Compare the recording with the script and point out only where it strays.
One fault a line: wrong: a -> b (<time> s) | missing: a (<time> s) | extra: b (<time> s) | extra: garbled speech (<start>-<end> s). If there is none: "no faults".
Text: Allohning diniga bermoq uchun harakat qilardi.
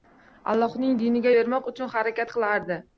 no faults